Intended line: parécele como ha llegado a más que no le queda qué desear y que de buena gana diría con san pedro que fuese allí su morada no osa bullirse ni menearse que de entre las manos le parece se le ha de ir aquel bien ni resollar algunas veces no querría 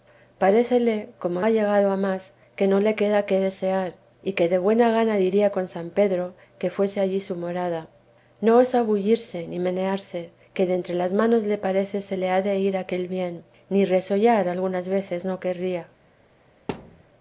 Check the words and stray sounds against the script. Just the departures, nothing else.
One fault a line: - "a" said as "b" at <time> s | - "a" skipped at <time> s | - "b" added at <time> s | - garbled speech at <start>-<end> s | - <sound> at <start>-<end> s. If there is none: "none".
- thud at 16.7-17.0 s